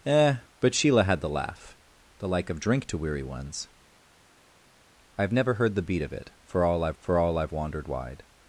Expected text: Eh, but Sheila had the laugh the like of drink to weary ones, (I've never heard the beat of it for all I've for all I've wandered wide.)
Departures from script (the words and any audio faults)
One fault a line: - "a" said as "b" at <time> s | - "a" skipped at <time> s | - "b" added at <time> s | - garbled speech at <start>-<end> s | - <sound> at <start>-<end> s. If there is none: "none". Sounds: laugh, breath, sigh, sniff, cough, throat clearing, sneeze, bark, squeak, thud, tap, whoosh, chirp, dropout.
none